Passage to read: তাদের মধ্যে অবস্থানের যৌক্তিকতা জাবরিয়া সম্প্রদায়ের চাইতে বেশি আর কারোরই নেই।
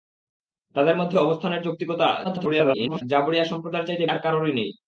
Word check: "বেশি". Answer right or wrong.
wrong